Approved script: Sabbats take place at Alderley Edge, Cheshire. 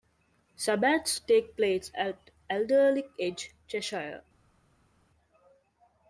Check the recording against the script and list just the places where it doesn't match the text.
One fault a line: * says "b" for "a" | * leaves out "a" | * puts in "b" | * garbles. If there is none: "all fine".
all fine